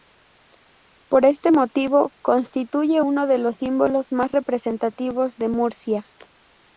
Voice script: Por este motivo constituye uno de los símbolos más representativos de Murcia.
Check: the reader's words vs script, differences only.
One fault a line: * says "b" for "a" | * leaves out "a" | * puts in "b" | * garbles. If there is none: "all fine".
all fine